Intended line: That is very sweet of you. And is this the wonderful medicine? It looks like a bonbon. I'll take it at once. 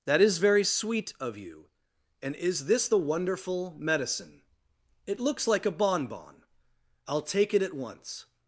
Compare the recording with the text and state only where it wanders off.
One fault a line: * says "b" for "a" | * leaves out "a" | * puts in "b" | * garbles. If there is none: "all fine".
all fine